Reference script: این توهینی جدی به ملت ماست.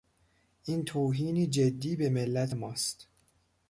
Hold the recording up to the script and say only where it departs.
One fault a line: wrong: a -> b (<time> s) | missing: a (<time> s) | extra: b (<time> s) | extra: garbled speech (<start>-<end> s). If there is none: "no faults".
no faults